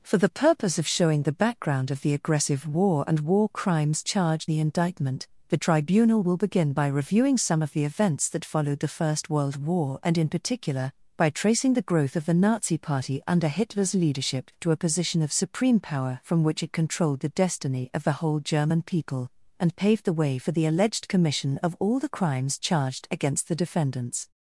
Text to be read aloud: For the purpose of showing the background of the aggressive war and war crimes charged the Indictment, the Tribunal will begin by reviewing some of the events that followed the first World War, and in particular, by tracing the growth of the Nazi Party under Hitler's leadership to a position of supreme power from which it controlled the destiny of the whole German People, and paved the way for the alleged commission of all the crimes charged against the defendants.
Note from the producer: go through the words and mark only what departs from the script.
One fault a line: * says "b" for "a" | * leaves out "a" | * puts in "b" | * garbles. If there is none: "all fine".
all fine